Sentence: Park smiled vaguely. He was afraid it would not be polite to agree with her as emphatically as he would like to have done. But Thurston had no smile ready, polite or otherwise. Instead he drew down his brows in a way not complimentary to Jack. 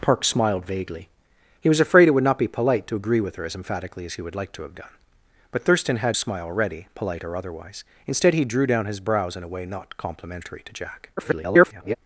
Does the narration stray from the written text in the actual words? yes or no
yes